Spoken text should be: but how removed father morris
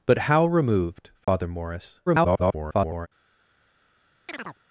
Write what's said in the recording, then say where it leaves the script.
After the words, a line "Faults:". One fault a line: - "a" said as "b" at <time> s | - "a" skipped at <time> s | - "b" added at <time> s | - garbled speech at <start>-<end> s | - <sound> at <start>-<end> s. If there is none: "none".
but how removed father morris [garbled]
Faults:
- dropout at 1.2-1.3 s
- garbled speech at 2.1-3.1 s
- chirp at 4.3-4.6 s